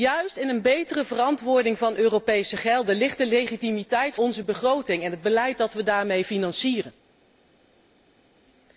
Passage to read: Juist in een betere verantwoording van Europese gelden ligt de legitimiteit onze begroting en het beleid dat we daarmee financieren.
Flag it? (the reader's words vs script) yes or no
no